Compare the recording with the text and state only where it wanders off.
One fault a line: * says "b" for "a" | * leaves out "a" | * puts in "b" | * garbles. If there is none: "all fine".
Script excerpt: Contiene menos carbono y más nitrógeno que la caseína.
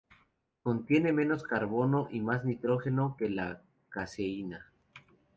all fine